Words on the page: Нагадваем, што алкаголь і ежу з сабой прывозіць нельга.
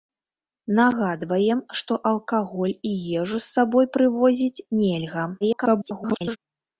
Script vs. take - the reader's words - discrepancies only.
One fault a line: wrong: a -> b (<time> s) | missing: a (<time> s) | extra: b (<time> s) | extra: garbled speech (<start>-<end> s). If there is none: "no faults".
extra: garbled speech (5.4-6.4 s)